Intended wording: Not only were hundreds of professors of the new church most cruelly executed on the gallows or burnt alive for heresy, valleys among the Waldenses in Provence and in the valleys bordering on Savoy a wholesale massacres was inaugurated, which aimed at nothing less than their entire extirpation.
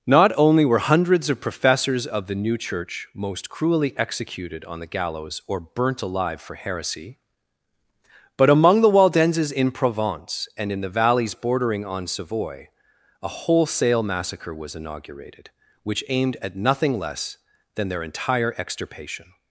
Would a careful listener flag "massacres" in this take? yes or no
yes